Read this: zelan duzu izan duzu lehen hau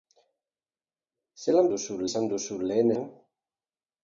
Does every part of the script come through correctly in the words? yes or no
yes